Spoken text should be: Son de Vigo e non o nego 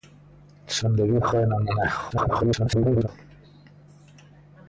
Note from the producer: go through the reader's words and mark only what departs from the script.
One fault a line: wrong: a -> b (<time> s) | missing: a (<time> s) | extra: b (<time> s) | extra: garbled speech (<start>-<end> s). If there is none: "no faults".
extra: garbled speech (2.1-3.1 s)